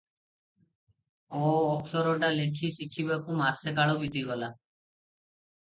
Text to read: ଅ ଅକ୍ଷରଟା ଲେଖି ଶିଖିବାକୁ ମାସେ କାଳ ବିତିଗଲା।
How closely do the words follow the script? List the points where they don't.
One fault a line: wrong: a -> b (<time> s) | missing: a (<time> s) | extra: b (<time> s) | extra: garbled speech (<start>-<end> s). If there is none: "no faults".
no faults